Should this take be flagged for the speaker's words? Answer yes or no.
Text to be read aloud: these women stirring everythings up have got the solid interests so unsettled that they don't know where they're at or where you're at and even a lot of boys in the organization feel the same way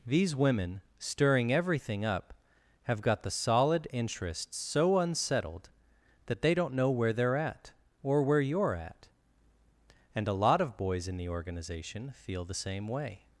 yes